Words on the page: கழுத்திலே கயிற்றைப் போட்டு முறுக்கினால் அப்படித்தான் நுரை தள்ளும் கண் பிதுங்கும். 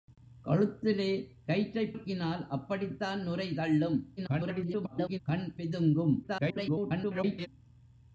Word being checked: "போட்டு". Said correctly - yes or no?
no